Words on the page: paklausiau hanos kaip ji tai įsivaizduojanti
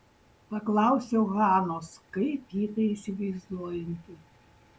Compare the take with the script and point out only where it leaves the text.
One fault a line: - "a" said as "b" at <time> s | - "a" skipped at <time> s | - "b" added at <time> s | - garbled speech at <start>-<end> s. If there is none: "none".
none